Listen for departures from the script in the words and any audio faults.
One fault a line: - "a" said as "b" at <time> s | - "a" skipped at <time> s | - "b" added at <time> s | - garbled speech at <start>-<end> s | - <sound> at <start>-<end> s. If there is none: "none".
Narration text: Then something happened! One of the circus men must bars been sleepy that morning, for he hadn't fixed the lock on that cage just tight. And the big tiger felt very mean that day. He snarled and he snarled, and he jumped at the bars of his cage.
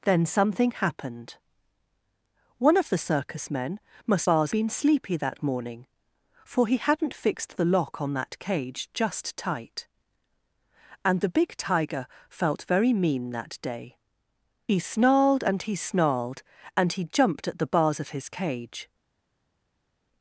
none